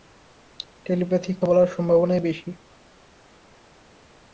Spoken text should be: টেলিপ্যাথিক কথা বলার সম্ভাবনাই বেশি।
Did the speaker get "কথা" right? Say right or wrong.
wrong